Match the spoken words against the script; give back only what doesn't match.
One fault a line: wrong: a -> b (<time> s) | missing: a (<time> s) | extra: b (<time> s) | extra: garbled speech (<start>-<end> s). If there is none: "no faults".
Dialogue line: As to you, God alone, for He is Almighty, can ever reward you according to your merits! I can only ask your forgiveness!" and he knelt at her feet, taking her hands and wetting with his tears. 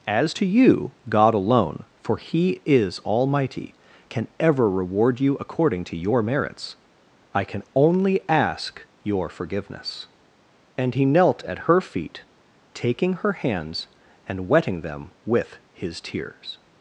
extra: them (14.8 s)